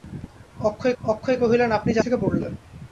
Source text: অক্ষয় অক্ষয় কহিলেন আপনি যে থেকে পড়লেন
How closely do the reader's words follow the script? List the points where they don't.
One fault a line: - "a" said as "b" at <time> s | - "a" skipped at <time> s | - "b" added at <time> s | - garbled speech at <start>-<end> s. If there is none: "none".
none